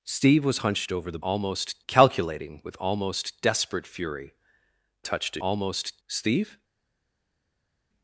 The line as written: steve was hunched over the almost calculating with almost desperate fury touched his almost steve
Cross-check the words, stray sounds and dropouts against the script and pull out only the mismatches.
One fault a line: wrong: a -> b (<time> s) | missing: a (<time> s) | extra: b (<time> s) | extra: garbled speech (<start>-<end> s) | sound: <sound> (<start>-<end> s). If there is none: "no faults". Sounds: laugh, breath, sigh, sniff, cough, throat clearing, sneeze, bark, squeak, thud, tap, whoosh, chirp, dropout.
no faults